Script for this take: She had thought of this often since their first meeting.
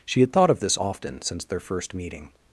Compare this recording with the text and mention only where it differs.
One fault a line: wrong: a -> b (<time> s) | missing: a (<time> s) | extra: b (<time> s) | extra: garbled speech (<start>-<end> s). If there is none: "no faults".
no faults